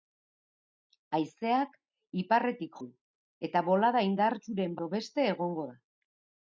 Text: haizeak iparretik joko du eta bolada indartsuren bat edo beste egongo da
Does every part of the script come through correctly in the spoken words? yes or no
no